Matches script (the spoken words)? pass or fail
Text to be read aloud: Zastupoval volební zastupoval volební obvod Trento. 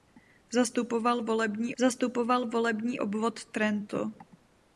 pass